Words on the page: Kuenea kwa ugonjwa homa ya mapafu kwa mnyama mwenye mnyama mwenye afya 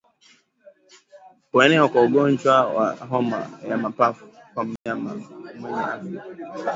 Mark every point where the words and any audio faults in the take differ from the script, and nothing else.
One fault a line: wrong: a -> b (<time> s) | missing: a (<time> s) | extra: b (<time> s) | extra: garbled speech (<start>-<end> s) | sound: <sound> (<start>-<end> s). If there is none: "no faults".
extra: wa (2.7 s)
sound: dropout (4.8-4.9 s)
missing: mnyama mwenye (5.8 s)